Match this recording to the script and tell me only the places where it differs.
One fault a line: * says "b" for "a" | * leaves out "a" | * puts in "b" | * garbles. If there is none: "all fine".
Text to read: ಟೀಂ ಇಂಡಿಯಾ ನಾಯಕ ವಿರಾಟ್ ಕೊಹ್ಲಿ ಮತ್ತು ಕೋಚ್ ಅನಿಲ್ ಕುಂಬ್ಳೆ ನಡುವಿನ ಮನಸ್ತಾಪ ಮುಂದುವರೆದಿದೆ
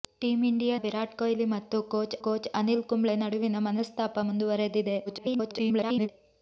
* leaves out "ನಾಯಕ"
* puts in "ಕೋಚ್"
* garbles